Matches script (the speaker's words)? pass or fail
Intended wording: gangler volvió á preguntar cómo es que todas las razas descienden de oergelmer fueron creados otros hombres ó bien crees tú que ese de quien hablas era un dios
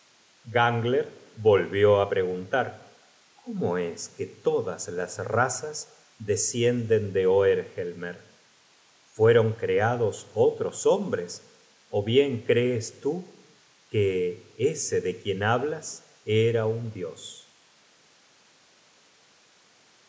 pass